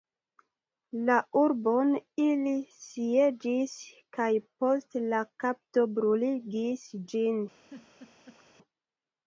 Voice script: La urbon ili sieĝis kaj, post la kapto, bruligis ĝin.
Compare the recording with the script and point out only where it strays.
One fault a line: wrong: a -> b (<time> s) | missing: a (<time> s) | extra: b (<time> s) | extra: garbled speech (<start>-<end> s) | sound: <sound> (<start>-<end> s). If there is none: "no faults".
sound: laugh (7.5-8.4 s)